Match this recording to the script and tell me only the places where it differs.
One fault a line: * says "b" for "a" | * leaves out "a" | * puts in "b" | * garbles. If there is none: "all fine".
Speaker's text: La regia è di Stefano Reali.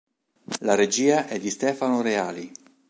all fine